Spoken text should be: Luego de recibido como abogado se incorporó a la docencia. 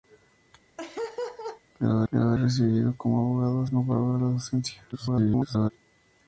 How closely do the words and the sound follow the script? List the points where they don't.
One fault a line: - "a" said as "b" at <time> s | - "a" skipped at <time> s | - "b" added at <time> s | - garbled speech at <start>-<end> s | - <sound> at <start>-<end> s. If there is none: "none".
- laugh at 0.8-1.6 s
- "luego" added at 2.1 s
- "se" skipped at 3.7 s
- garbled speech at 4.9-5.7 s